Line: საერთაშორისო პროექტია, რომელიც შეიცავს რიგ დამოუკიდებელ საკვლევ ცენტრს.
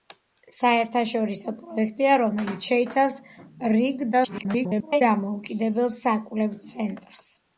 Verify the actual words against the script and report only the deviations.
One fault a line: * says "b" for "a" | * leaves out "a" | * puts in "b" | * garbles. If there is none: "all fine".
* garbles